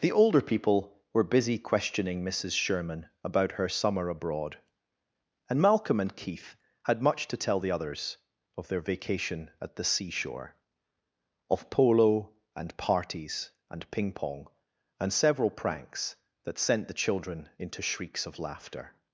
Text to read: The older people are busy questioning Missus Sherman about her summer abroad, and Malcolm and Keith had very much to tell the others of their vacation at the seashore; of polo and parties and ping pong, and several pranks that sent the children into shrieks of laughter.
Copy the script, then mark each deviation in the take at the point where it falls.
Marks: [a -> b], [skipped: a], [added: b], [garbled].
The older people [are -> were] busy questioning Missus Sherman about her summer abroad, and Malcolm and Keith had [skipped: very] much to tell the others of their vacation at the seashore; of polo and parties and ping pong, and several pranks that sent the children into shrieks of laughter.